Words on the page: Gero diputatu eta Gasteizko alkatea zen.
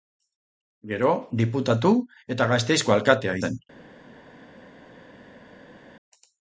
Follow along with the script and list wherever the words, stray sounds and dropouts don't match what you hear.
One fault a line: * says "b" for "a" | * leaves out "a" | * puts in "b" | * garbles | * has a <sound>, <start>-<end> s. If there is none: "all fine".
all fine